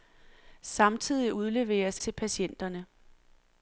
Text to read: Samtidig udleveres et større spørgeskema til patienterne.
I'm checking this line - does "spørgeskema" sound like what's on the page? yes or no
no